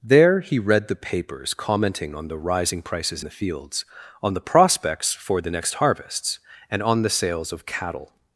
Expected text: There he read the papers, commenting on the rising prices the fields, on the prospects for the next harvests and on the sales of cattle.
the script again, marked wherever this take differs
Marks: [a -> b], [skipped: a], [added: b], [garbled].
There he read the papers, commenting on the rising prices the fields, on the prospects for the next harvests and on the sales of cattle.